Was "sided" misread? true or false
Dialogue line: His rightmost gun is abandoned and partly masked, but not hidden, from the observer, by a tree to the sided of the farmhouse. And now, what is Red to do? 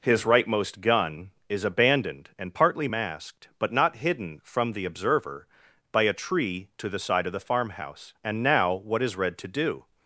true